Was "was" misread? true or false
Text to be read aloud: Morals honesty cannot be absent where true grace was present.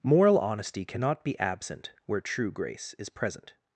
true